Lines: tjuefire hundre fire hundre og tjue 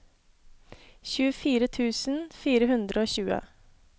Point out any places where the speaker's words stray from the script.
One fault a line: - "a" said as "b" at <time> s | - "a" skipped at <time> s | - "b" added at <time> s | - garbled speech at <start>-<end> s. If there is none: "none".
- "hundre" said as "tusen" at 1.8 s